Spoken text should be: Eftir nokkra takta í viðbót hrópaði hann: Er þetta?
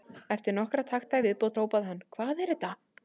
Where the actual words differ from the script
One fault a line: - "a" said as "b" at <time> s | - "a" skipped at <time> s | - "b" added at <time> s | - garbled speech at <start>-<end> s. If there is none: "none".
- "Hvað" added at 2.2 s